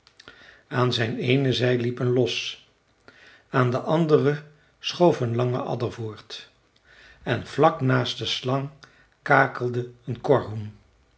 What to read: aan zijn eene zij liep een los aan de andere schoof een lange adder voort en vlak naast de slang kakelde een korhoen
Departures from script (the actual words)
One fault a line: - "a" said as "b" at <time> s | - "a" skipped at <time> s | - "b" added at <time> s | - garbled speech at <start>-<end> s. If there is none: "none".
none